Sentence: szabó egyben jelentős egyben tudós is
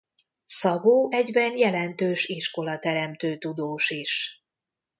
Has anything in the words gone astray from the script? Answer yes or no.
yes